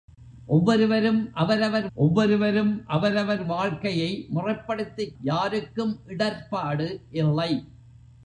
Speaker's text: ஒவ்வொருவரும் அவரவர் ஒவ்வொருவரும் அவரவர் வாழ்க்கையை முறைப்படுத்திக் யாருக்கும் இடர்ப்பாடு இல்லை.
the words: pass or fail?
pass